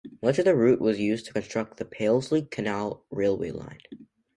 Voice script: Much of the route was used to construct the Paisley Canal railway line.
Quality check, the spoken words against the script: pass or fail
pass